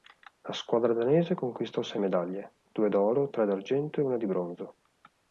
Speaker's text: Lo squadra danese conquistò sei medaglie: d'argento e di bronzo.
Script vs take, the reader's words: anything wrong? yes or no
yes